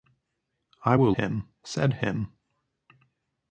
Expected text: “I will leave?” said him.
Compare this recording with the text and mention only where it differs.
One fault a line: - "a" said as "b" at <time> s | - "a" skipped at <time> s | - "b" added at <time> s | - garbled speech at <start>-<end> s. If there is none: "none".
- "leave" said as "him" at 1.2 s